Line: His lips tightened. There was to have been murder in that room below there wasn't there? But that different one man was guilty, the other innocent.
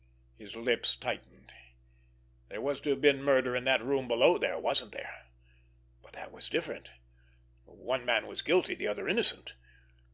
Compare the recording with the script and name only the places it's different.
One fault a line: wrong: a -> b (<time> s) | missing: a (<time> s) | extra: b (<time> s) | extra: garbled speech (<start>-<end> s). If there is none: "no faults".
extra: was (6.3 s)